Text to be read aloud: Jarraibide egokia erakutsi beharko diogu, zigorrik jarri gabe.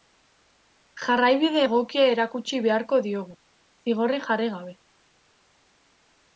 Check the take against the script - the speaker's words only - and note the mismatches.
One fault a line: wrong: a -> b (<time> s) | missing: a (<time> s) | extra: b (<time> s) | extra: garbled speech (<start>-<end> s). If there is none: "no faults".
no faults